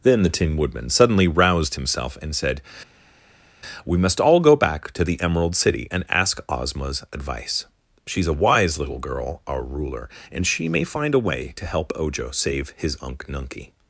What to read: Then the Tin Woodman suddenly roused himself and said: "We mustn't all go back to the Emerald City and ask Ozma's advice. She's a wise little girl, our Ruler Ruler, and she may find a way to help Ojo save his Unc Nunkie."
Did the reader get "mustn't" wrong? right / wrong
wrong